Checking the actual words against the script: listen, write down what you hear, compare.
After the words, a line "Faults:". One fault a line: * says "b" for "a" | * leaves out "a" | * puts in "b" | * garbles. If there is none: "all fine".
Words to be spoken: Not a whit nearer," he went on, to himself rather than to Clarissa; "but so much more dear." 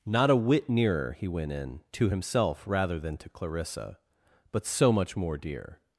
Not a whit nearer," he went in, to himself rather than to Clarissa; "but so much more dear."
Faults:
* says "in" for "on"